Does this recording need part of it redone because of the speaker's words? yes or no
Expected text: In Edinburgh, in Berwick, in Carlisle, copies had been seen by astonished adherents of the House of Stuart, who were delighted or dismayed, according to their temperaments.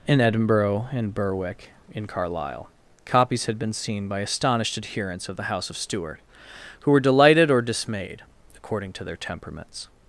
no